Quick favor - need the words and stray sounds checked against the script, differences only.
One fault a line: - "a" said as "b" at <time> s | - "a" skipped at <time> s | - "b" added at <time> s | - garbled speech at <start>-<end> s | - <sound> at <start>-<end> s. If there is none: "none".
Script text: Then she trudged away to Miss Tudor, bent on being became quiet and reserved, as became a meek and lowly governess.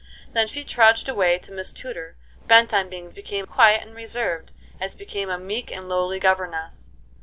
none